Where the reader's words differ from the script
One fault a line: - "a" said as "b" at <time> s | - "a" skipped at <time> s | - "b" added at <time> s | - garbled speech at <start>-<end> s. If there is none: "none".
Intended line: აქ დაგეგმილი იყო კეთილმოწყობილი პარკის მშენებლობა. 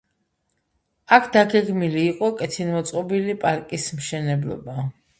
none